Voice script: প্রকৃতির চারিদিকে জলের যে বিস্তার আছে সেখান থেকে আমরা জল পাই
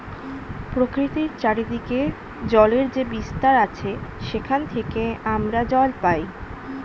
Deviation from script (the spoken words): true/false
false